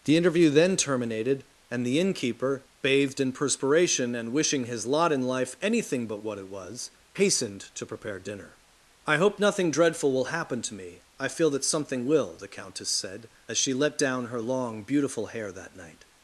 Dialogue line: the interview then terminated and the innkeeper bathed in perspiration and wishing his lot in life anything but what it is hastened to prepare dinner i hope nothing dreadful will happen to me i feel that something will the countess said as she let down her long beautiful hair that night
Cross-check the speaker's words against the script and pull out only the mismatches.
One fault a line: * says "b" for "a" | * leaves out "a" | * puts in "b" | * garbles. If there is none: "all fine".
* says "was" for "is"